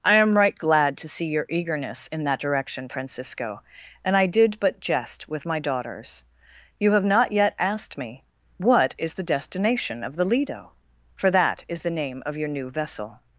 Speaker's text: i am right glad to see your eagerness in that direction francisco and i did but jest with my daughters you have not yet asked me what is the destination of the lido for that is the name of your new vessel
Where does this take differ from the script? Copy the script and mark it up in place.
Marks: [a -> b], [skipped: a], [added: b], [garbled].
i am right glad to see your eagerness in that direction francisco and i did but jest with my daughters you have not yet asked me what is the destination of the lido for that is the name of your new vessel